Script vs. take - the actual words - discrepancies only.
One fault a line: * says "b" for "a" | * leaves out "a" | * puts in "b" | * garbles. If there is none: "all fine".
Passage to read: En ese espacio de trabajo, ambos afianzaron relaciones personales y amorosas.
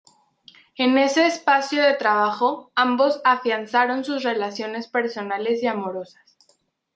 * puts in "sus"